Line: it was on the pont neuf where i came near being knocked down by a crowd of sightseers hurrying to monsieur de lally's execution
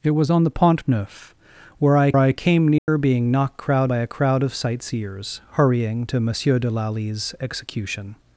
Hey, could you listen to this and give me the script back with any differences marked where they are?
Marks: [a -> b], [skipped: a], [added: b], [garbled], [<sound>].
it was on the pont neuf where i [added: i] came near [dropout] being knocked [down -> crowd] by a crowd of sightseers hurrying to monsieur de lally's execution